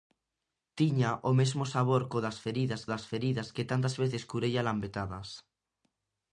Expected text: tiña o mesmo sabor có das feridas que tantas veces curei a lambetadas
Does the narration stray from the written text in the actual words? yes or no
yes